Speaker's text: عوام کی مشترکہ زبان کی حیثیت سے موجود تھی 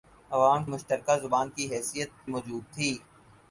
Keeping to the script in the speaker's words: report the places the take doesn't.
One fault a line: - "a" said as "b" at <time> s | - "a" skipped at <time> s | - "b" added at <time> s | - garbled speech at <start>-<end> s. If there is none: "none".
- "کی" skipped at 0.6 s
- "سے" skipped at 2.1 s